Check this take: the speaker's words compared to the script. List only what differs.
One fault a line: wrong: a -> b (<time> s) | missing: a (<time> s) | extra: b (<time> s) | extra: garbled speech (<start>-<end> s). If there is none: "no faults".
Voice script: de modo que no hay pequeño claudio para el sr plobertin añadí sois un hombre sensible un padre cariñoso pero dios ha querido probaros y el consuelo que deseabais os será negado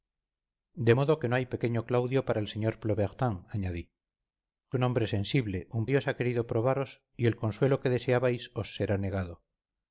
missing: sois (3.8 s)
missing: padre cariñoso pero (5.8 s)